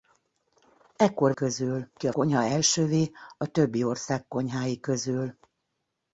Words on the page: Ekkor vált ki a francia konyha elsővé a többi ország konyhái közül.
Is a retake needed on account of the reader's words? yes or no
yes